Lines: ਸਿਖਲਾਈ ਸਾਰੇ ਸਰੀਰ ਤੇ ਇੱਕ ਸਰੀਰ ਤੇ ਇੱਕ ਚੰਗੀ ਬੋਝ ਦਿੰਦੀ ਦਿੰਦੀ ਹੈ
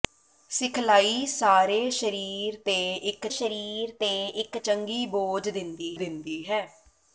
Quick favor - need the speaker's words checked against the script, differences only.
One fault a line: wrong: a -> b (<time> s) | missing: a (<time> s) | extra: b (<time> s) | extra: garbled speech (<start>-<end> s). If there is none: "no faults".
no faults